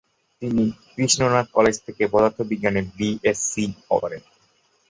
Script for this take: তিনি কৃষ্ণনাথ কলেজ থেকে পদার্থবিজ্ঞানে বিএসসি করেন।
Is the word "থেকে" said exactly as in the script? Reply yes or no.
yes